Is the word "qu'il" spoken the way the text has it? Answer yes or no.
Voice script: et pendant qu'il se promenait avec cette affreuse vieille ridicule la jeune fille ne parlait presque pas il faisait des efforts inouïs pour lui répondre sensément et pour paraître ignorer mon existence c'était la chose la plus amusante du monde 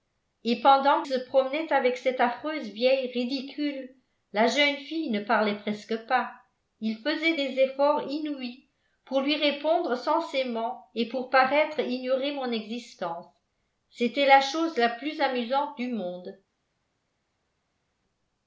no